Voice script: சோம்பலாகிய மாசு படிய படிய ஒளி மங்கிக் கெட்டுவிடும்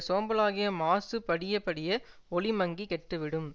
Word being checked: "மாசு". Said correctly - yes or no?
yes